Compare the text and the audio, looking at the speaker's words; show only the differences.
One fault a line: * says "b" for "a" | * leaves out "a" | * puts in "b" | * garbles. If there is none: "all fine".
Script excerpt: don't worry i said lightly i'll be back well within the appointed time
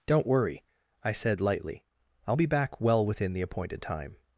all fine